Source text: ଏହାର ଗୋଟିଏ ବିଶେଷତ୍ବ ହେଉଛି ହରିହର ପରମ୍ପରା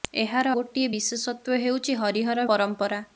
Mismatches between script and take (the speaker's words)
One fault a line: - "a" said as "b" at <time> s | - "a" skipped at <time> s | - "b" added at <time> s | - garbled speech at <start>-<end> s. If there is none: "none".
none